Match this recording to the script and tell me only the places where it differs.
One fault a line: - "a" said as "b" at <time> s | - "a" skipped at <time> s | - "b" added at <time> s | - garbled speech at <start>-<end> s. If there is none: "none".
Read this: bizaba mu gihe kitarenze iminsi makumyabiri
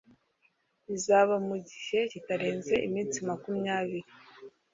none